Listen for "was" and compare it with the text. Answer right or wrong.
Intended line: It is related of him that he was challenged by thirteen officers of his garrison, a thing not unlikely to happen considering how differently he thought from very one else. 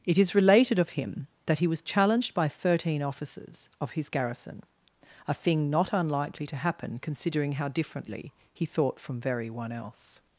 right